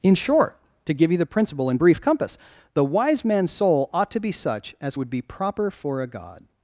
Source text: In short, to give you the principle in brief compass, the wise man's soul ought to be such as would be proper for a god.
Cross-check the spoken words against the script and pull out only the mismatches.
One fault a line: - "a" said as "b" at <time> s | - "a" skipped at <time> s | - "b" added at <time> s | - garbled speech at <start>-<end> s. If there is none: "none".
none